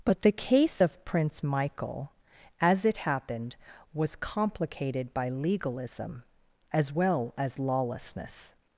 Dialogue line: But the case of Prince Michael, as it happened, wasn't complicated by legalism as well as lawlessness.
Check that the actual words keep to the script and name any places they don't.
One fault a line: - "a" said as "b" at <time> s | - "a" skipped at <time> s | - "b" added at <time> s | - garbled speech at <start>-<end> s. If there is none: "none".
- "wasn't" said as "was" at 3.9 s